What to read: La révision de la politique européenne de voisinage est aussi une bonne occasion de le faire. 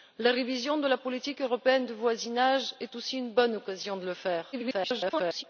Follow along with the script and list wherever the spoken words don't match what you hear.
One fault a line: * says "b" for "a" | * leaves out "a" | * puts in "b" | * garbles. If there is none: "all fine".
* garbles